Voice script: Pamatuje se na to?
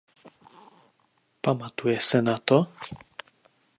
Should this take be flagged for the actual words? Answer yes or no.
no